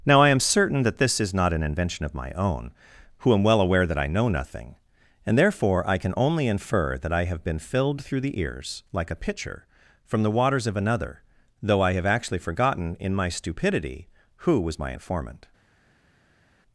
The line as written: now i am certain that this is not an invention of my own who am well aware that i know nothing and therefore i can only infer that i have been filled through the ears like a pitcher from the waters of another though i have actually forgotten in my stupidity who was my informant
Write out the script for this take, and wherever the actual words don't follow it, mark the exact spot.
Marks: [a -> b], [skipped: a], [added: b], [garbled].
now i am certain that this is not an invention of my own who am well aware that i know nothing and therefore i can only infer that i have been filled through the ears like a pitcher from the waters of another though i have actually forgotten in my stupidity who was my informant